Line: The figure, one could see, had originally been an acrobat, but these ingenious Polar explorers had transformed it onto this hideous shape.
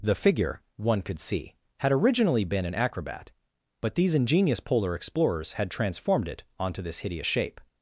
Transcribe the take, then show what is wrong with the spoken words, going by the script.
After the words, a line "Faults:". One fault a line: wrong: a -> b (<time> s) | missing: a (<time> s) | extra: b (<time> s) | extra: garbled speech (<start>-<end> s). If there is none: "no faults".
The figure, one could see, had originally been an acrobat, but these ingenious Polar explorers had transformed it onto this hideous shape.
Faults:
no faults